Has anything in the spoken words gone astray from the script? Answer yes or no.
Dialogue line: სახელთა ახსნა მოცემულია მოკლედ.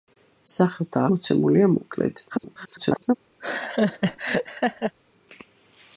yes